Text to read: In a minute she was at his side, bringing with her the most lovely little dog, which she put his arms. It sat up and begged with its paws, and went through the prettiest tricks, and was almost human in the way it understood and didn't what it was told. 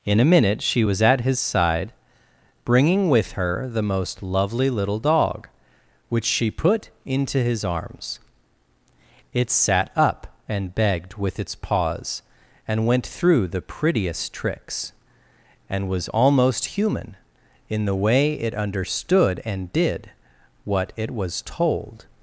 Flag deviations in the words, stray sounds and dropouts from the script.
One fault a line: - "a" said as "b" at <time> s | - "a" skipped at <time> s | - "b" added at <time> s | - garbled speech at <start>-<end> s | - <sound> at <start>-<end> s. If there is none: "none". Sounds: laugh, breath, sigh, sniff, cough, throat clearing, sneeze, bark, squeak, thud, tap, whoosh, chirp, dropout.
- "into" added at 7.0 s
- "didn't" said as "did" at 19.7 s